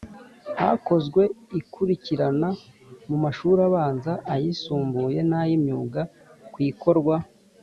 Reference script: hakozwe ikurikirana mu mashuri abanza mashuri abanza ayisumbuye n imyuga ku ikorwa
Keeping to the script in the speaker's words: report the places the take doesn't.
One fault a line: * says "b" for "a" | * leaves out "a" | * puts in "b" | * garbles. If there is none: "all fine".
* leaves out "mashuri abanza"
* puts in "ay"